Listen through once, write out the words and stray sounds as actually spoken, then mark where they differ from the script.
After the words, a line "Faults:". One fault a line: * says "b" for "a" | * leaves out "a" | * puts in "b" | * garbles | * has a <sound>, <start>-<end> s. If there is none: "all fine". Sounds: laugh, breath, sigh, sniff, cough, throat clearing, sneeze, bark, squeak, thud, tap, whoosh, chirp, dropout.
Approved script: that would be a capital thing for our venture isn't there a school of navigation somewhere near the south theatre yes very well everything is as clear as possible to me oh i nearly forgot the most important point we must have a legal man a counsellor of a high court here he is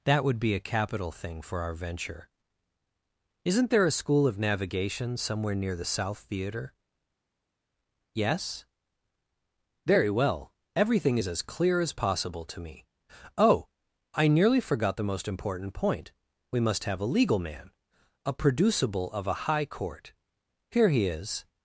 that would be a capital thing for our venture isn't there a school of navigation somewhere near the south theatre yes very well everything is as clear as possible to me oh i nearly forgot the most important point we must have a legal man a producible of a high court here he is
Faults:
* says "producible" for "counsellor"